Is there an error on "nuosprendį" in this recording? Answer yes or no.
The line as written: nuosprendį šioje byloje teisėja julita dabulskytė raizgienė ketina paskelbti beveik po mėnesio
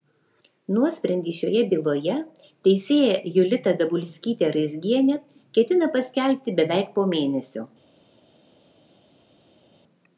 no